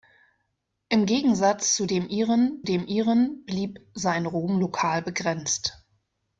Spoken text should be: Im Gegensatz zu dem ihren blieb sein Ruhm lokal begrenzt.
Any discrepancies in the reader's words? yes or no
yes